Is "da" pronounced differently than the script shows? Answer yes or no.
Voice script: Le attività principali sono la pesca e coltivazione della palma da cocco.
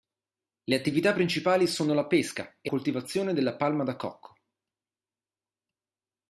no